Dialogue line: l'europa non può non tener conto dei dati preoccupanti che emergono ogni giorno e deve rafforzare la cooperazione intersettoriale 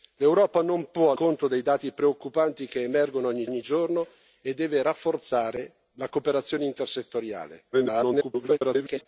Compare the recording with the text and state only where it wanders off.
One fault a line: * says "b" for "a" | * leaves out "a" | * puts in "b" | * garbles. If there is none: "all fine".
* leaves out "non tener"
* puts in "ogni"
* garbles